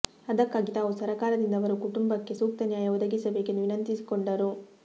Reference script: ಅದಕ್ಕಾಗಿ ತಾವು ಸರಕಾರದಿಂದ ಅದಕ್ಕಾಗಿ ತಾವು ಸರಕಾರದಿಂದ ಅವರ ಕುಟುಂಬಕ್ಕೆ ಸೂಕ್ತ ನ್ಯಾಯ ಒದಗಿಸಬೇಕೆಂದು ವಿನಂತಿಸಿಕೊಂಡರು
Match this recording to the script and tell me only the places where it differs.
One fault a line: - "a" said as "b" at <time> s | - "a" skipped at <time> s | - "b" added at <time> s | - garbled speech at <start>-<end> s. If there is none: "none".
- "ಅದಕ್ಕಾಗಿ ತಾವು ಸರಕಾರದಿಂದ" skipped at 1.6 s